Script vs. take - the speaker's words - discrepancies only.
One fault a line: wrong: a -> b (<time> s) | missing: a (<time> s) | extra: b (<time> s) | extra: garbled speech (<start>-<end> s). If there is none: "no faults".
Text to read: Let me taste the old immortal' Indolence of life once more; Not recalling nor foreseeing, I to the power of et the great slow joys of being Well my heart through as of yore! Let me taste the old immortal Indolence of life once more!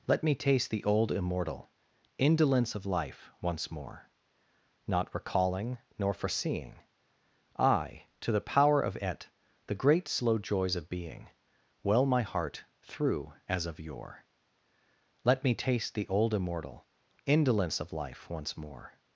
no faults